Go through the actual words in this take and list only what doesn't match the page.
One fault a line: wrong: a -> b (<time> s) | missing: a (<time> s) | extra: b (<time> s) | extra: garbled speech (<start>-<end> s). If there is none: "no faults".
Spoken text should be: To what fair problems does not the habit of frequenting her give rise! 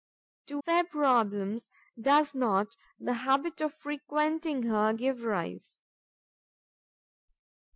missing: what (0.6 s)